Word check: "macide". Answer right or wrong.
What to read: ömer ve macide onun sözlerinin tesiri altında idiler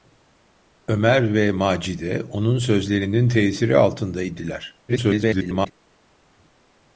right